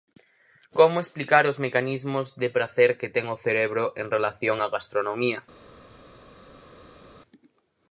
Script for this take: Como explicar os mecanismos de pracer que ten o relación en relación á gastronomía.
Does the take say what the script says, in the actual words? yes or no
no